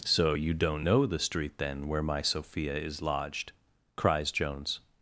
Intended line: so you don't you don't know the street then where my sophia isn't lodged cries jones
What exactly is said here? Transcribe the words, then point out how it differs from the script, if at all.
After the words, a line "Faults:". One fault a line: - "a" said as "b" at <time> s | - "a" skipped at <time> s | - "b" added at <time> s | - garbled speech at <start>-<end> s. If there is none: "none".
so you don't know the street then where my sophia is lodged cries jones
Faults:
- "you don't" skipped at 0.9 s
- "isn't" said as "is" at 2.8 s